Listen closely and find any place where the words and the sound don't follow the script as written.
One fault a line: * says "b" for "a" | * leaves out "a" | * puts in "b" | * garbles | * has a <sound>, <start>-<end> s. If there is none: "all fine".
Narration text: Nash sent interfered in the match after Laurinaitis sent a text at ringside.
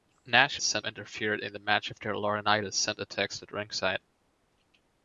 all fine